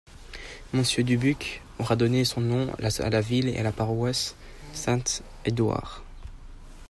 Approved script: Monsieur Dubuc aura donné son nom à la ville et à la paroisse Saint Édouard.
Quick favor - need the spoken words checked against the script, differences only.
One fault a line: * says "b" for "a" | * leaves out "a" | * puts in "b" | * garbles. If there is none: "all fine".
all fine